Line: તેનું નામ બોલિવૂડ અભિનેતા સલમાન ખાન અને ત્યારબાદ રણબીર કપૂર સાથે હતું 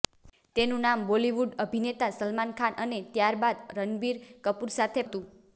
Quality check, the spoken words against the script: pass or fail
pass